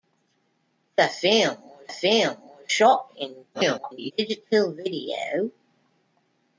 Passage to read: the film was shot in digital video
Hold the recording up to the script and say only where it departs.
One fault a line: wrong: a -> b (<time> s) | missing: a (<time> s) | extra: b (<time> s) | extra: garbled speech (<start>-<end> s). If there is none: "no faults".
extra: film was (1.9 s)
extra: garbled speech (3.5-4.1 s)